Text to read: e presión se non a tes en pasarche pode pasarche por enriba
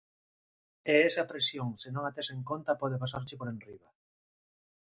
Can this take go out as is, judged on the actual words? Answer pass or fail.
fail